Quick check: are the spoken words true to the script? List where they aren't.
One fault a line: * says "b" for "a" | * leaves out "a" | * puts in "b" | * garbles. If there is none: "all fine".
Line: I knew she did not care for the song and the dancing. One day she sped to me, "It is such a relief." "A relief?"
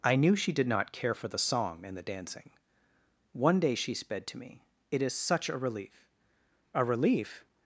all fine